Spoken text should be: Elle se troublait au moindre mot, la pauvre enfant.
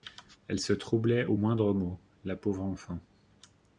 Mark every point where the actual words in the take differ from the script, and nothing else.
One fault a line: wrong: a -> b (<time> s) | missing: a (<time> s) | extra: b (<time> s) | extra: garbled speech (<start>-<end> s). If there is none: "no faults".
no faults